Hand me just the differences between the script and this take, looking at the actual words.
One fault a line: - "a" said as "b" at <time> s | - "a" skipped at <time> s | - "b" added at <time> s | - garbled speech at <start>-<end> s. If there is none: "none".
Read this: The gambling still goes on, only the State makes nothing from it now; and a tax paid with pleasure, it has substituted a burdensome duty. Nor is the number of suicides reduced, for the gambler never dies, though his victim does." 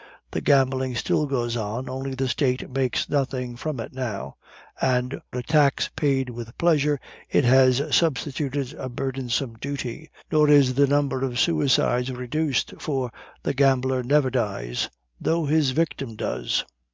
none